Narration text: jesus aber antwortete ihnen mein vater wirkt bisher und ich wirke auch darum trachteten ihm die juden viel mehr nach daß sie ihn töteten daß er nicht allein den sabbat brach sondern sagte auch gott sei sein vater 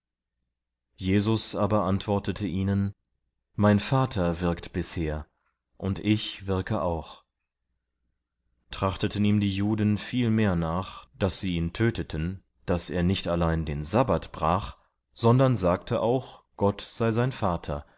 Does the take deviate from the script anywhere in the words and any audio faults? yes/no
yes